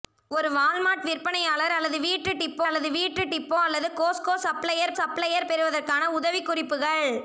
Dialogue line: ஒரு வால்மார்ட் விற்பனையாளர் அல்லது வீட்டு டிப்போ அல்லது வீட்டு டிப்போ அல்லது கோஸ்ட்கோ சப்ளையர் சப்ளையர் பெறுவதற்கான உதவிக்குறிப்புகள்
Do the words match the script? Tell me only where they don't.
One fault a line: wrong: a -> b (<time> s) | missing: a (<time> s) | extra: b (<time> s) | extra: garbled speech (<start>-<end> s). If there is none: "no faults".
no faults